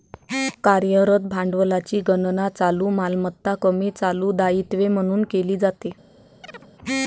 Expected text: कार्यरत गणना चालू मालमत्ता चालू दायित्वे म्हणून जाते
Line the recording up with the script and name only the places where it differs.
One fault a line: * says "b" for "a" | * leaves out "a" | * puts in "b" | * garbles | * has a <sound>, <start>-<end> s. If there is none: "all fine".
* puts in "भांडवलाची"
* puts in "कमी"
* puts in "केली"
* has a chirp, 6.4-6.7 s